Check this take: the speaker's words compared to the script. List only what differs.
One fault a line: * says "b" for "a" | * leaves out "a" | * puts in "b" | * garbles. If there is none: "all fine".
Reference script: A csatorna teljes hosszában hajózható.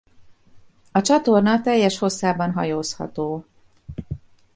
all fine